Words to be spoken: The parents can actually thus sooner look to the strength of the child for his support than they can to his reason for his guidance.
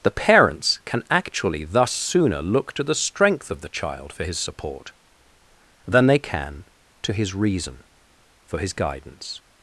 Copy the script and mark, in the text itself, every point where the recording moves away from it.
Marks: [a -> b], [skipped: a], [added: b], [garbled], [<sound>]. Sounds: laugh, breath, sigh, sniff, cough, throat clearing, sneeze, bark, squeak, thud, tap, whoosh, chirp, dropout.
The parents can actually thus sooner look to the strength of the child for his support than they can to his reason for his guidance.